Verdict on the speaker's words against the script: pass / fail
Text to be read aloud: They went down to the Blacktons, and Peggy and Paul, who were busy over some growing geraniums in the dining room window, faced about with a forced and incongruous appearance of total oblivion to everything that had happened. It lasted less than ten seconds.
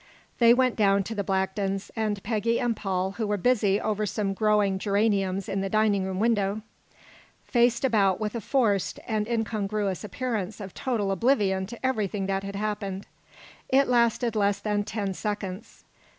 pass